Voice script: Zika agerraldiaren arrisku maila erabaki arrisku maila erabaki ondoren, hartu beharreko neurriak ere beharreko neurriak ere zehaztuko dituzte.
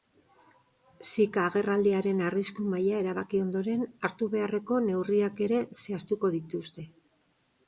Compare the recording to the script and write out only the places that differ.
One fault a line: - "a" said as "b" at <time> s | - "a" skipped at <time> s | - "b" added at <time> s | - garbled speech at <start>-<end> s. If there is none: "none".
- "arrisku maila erabaki" skipped at 3.4 s
- "beharreko neurriak ere" skipped at 5.6 s